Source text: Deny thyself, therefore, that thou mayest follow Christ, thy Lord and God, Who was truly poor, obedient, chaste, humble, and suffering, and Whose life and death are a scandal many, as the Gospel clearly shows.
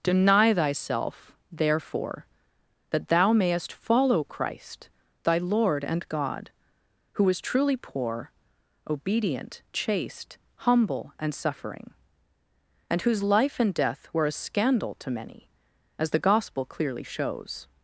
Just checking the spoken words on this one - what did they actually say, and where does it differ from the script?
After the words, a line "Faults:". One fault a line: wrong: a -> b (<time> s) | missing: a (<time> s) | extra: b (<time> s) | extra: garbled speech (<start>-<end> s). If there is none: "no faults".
Deny thyself, therefore, that thou mayest follow Christ, thy Lord and God, Who was truly poor, obedient, chaste, humble, and suffering, and Whose life and death were a scandal to many, as the Gospel clearly shows.
Faults:
wrong: are -> were (14.1 s)
extra: to (15.0 s)